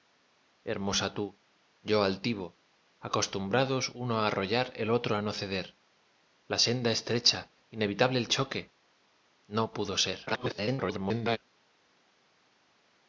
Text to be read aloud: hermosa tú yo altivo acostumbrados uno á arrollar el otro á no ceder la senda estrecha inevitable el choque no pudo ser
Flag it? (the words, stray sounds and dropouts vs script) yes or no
yes